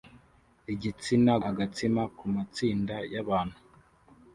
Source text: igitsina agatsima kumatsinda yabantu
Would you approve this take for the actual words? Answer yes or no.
yes